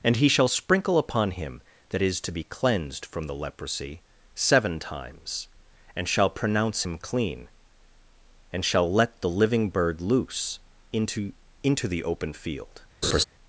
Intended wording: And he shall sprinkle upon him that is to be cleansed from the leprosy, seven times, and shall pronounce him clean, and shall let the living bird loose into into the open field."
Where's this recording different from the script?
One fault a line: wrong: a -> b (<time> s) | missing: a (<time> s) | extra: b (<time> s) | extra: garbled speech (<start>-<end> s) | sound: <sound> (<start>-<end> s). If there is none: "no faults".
sound: laugh (13.0-13.2 s)